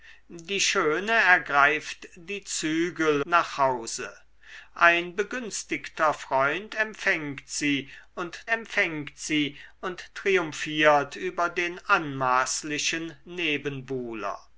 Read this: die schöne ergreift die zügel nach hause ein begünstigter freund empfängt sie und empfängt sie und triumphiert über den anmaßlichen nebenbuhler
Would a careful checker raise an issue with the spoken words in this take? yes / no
no